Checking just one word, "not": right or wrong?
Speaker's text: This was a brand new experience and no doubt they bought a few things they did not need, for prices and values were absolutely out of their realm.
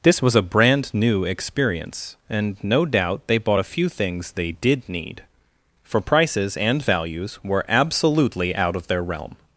wrong